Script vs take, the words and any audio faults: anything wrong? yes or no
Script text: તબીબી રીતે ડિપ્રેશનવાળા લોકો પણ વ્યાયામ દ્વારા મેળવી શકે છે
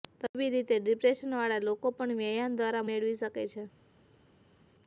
no